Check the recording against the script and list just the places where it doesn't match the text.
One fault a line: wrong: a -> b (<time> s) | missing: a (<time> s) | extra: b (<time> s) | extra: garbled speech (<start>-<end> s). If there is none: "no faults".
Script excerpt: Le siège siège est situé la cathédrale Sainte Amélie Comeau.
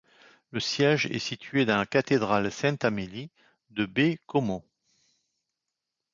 missing: siège (1.0 s)
extra: dans (1.7 s)
extra: de Baie (3.7 s)